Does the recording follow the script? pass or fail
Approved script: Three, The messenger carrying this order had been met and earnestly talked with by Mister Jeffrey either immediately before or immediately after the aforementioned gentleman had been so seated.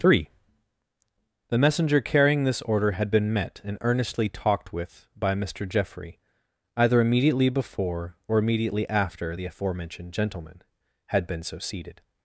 pass